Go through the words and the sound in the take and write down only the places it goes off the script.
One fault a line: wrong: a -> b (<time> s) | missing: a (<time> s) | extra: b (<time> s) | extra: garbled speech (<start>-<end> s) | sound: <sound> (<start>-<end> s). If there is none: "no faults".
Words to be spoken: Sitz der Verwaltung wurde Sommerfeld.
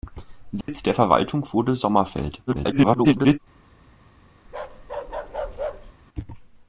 sound: dropout (0.6-0.7 s)
extra: garbled speech (2.5-3.4 s)
sound: bark (4.4-5.9 s)